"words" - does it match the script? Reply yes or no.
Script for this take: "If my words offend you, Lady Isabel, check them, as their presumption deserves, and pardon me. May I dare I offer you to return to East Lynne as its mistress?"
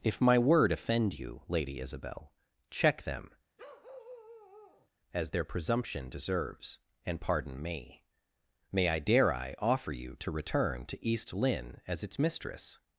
no